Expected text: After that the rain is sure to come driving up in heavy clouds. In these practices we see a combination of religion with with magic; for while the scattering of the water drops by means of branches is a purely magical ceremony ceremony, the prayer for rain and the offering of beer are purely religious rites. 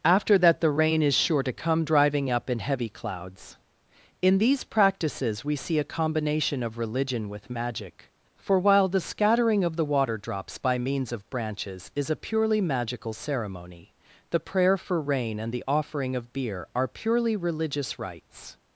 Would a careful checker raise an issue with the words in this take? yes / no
yes